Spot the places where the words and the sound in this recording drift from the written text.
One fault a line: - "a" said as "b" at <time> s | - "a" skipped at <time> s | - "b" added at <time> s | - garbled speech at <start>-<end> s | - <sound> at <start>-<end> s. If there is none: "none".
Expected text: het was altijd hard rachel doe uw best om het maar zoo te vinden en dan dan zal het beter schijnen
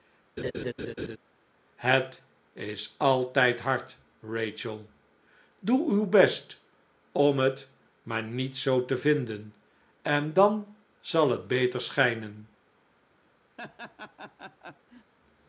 - laugh at 0.4-1.2 s
- "was" said as "is" at 2.5 s
- "niet" added at 8.2 s
- "dan" skipped at 10.8 s
- laugh at 13.6-15.1 s